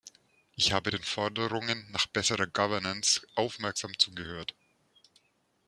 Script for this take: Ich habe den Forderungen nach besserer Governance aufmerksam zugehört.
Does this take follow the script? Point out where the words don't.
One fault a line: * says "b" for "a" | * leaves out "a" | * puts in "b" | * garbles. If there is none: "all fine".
all fine